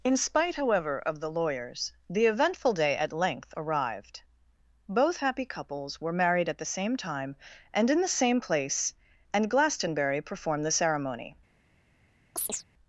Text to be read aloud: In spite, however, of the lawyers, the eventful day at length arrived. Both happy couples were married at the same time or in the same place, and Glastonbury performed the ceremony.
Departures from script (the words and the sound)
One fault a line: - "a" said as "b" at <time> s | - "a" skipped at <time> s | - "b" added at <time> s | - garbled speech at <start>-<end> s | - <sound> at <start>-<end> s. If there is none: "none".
- "or" said as "and" at 7.7 s
- chirp at 12.4-12.6 s